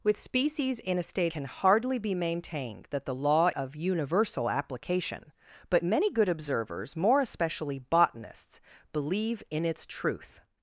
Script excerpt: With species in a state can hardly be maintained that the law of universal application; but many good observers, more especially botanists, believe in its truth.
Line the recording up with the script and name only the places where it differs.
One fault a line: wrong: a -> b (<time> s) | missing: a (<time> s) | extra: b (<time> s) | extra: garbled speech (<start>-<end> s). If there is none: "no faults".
no faults